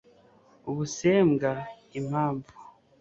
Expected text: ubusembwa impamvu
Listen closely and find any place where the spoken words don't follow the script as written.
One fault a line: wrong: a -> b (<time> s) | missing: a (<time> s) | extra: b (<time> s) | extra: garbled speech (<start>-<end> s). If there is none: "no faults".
no faults